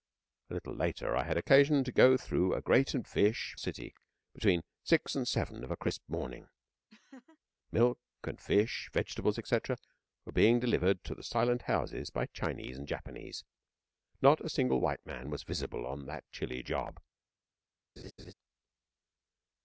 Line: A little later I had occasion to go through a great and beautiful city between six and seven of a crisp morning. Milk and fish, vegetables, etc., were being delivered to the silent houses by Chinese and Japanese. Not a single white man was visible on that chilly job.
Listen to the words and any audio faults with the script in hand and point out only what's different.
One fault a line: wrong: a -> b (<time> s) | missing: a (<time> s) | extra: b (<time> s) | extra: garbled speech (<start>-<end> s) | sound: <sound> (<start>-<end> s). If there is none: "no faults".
wrong: beautiful -> fish (3.1 s)
sound: laugh (6.9-7.4 s)
sound: laugh (18.0-18.3 s)